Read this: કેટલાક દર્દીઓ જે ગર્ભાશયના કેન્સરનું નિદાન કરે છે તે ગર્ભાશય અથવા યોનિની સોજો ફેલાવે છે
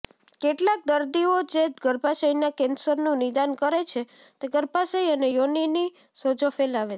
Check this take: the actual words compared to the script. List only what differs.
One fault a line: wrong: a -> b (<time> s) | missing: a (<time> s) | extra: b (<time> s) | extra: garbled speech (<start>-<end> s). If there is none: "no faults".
wrong: અથવા -> અને (5.1 s)